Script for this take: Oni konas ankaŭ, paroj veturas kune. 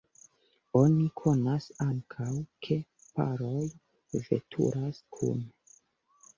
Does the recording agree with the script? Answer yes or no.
no